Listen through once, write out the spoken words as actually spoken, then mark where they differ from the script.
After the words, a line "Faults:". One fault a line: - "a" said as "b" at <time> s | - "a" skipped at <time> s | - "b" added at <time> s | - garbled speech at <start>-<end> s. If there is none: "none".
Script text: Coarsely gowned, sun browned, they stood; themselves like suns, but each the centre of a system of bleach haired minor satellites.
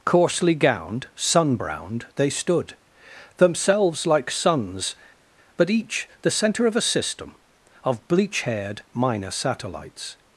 Coarsely gowned, sun browned, they stood; themselves like suns, but each the centre of a system of bleach haired minor satellites.
Faults:
none